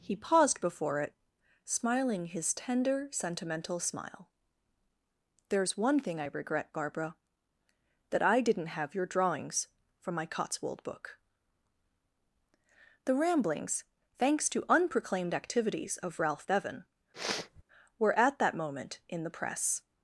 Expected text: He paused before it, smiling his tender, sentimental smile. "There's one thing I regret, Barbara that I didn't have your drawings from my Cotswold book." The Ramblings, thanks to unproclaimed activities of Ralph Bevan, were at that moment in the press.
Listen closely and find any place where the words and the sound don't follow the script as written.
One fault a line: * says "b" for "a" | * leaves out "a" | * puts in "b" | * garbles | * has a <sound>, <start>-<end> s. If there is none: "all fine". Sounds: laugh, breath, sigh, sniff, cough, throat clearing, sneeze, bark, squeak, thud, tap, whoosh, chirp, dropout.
* has a sniff, 17.1-17.6 s